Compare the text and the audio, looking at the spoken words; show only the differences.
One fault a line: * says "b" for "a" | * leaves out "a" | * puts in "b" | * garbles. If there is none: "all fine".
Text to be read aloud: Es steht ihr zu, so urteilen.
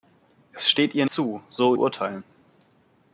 all fine